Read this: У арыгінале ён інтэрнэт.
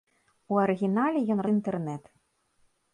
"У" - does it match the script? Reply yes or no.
yes